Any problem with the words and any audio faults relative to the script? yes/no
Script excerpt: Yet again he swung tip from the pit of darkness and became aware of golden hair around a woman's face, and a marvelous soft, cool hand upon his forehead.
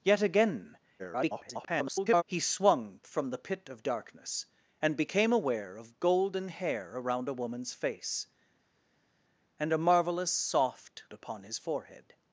yes